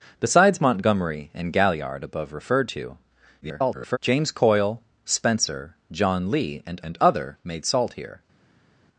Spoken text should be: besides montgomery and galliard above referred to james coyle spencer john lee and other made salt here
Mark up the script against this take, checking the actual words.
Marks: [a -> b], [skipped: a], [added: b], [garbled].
besides montgomery and galliard above referred to [garbled] james coyle spencer john lee and [added: and] other made salt here